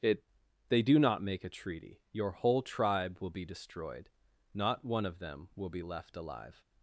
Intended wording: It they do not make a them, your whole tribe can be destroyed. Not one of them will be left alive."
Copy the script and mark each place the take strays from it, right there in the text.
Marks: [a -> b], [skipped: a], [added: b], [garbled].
It they do not make a [them, -> treaty] your whole tribe [can -> will] be destroyed. Not one of them will be left alive."